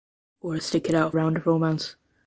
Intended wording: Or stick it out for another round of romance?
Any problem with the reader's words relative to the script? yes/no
yes